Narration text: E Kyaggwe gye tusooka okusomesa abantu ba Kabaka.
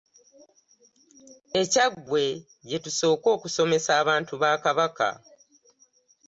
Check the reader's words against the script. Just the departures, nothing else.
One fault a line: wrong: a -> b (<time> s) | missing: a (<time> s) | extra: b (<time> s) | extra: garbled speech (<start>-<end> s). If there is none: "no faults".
no faults